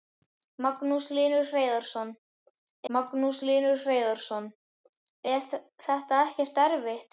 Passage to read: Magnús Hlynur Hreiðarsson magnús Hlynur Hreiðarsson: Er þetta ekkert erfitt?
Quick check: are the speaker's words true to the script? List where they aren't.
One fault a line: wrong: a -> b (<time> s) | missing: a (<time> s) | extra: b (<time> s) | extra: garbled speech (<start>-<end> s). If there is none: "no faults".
no faults